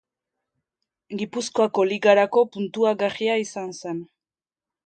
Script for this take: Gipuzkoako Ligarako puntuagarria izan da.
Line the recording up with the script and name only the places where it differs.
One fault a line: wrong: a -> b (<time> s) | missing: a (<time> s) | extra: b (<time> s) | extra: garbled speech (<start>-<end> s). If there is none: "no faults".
wrong: da -> zen (3.8 s)